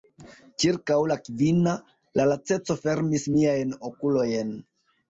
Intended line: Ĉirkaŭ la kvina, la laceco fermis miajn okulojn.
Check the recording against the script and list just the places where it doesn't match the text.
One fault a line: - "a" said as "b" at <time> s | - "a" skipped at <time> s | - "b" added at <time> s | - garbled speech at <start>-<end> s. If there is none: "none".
none